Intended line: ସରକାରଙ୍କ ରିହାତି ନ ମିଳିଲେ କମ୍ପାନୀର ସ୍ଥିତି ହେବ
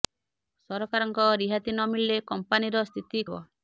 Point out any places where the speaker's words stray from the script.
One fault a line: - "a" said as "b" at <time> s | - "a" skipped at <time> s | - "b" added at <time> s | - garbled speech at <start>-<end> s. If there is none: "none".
none